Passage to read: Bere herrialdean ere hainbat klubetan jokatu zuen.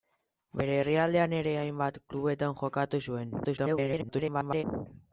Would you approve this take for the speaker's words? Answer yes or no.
no